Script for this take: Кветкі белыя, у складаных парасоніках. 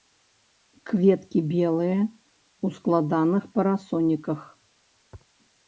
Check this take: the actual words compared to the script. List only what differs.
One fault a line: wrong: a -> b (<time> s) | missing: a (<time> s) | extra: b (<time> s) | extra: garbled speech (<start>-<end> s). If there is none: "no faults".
no faults